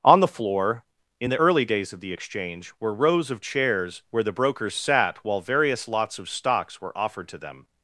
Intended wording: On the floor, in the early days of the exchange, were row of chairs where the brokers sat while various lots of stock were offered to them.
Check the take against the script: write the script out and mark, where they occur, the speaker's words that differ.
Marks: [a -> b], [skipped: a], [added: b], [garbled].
On the floor, in the early days of the exchange, were [row -> rows] of chairs where the brokers sat while various lots of [stock -> stocks] were offered to them.